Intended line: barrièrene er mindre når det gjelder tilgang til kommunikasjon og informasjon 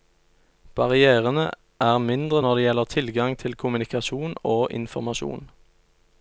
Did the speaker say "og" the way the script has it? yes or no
yes